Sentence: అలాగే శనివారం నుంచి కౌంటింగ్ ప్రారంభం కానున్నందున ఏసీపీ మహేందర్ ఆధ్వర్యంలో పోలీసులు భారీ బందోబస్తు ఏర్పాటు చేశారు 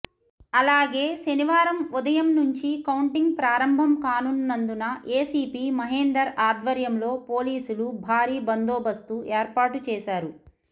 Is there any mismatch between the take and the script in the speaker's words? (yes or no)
yes